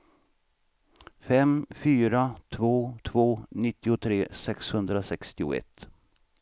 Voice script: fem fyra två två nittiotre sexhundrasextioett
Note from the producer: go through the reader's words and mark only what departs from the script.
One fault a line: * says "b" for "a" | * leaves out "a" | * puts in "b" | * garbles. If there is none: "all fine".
all fine